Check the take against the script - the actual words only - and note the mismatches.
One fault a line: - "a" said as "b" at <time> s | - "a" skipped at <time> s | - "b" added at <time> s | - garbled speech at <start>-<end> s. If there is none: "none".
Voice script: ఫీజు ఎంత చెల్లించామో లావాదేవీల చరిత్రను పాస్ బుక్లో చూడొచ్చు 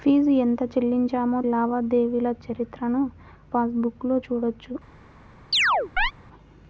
none